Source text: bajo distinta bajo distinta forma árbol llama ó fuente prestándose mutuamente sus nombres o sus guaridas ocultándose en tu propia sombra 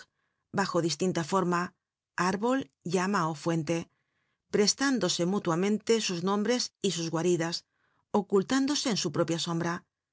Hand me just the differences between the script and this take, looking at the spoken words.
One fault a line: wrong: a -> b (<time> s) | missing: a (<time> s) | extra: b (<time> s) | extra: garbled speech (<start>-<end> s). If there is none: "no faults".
missing: bajo distinta (1.2 s)
wrong: o -> y (6.8 s)
wrong: tu -> su (9.0 s)